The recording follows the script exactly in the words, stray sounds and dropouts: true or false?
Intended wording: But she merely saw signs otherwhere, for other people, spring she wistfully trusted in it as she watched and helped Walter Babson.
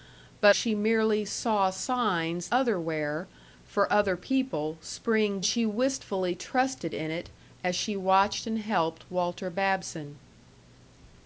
true